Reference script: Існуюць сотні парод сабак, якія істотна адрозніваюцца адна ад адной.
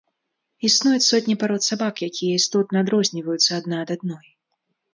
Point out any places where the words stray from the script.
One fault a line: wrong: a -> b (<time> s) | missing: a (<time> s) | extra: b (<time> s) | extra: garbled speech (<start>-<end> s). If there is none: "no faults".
no faults